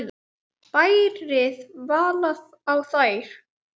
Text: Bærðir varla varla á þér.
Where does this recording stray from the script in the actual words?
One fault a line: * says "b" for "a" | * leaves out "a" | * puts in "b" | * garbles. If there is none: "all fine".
* leaves out "varla"